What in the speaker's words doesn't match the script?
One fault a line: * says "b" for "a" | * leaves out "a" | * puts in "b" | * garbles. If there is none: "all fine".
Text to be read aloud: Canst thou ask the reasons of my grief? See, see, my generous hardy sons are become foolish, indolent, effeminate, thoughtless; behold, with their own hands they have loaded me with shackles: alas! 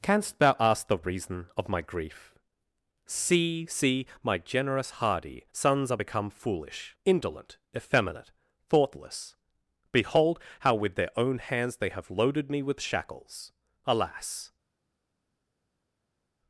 * says "reason" for "reasons"
* puts in "how"